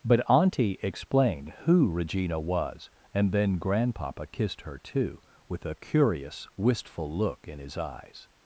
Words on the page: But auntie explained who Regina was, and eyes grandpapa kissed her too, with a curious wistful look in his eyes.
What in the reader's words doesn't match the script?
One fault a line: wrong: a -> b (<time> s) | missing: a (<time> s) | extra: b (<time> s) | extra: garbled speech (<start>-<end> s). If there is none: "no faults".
wrong: eyes -> then (3.3 s)